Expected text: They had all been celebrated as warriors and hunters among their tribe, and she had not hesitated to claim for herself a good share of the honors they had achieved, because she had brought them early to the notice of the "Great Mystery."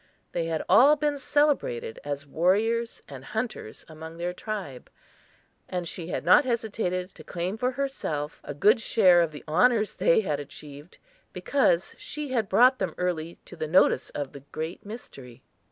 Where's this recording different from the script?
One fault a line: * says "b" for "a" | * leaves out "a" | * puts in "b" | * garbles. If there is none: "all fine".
all fine